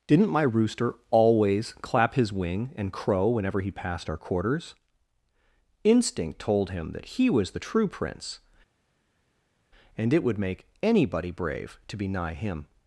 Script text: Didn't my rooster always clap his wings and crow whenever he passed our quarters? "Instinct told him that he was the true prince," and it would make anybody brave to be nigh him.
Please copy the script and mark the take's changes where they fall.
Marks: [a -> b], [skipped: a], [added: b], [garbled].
Didn't my rooster always clap his [wings -> wing] and crow whenever he passed our quarters? "Instinct told him that he was the true prince," and it would make anybody brave to be nigh him.